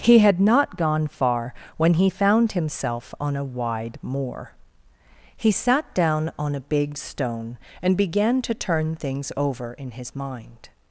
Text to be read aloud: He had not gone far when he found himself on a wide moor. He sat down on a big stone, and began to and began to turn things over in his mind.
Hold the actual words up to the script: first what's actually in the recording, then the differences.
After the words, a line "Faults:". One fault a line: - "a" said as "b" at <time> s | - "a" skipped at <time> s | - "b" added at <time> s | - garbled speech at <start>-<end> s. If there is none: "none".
He had not gone far when he found himself on a wide moor. He sat down on a big stone, and began to turn things over in his mind.
Faults:
- "and began to" skipped at 8.6 s